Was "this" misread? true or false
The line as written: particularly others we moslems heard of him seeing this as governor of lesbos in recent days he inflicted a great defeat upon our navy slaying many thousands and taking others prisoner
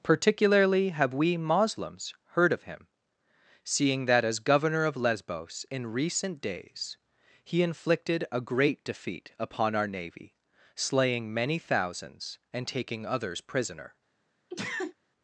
true